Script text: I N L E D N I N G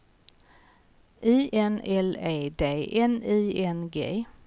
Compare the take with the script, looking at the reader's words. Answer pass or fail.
pass